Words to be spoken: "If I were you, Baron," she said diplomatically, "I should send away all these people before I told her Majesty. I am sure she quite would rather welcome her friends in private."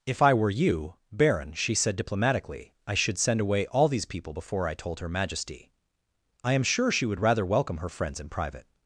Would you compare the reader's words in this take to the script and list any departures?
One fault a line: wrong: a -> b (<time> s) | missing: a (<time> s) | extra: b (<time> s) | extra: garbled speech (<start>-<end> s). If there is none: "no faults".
missing: quite (7.0 s)